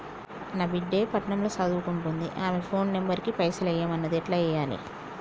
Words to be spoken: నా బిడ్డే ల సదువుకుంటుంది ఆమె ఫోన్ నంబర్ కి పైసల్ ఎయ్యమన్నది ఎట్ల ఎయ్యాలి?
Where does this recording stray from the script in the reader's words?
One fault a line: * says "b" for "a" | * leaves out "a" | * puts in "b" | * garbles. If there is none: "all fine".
* puts in "పట్నం"